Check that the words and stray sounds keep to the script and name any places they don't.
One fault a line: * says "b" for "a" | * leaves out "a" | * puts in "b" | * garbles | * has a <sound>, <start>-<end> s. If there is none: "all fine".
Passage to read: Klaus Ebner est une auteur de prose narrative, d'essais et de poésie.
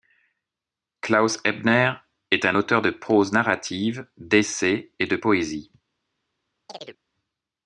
* says "un" for "une"
* has a chirp, 6.7-7.0 s